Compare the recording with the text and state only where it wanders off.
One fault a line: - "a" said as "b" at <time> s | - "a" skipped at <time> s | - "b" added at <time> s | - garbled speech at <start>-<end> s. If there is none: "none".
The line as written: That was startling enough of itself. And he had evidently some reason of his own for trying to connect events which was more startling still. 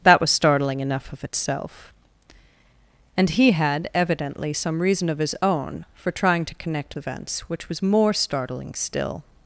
none